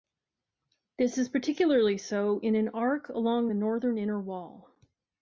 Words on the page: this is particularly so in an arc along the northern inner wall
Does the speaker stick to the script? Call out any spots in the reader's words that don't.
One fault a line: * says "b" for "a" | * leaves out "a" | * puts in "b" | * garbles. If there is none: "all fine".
all fine